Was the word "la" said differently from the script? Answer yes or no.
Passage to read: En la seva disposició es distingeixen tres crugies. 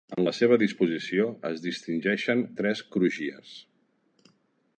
no